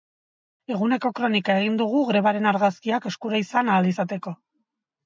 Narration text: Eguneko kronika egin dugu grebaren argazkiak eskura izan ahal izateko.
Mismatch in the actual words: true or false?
false